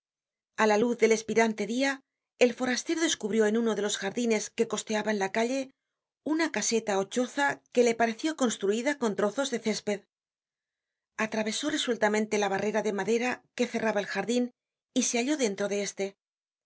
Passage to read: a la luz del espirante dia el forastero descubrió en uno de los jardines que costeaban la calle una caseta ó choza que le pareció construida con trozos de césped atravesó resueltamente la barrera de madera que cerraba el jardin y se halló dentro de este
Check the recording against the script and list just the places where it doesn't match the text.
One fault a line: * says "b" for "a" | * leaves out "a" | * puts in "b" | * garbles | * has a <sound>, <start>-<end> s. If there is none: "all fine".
all fine